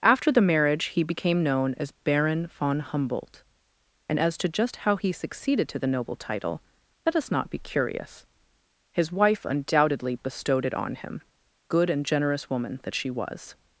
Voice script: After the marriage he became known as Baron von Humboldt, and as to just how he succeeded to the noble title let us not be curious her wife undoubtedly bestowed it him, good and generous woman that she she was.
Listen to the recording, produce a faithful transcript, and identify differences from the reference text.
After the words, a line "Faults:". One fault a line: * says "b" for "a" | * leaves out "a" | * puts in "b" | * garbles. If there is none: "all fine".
After the marriage he became known as Baron von Humboldt, and as to just how he succeeded to the noble title let us not be curious his wife undoubtedly bestowed it on him, good and generous woman that she was.
Faults:
* says "his" for "her"
* puts in "on"
* leaves out "she"